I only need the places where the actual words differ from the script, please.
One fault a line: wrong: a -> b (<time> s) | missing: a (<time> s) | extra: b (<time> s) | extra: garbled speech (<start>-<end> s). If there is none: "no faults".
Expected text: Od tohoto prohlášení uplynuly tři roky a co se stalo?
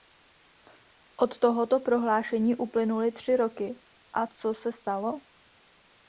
no faults